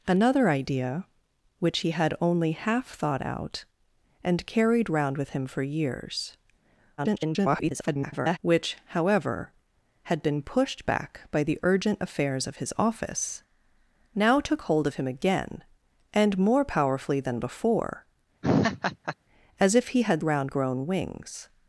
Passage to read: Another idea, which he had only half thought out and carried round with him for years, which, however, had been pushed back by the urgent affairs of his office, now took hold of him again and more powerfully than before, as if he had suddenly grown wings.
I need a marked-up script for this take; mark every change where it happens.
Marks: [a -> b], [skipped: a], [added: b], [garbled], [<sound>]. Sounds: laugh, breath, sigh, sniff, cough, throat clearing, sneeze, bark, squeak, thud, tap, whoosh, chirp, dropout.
Another idea, which he had only half thought out and carried round with him for years, [garbled] which, however, had been pushed back by the urgent affairs of his office, now took hold of him again and more powerfully than before, [laugh] as if he had [suddenly -> round] grown wings.